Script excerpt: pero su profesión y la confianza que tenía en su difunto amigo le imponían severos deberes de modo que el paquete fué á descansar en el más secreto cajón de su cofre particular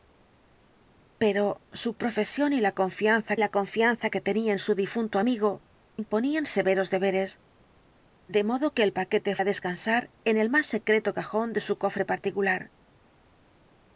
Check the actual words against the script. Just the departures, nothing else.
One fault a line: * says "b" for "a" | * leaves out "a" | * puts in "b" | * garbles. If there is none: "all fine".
* puts in "la confianza"
* leaves out "le"
* leaves out "fué"